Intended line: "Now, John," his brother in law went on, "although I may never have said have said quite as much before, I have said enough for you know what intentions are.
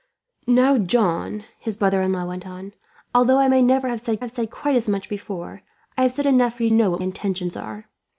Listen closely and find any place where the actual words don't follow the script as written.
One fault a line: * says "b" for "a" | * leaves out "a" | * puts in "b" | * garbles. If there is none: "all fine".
all fine